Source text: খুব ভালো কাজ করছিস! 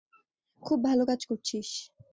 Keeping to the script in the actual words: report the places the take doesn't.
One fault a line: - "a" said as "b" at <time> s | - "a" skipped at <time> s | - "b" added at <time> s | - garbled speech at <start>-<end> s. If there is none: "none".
none